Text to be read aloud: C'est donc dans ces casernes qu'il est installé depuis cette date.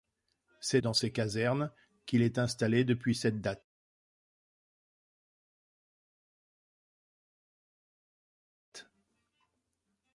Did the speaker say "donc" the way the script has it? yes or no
no